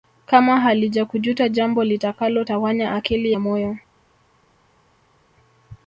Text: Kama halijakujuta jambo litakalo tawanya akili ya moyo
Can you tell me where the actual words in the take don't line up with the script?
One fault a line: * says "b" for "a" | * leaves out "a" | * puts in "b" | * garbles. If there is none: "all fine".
all fine